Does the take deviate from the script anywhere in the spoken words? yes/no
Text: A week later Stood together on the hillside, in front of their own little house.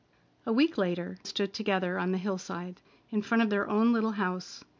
no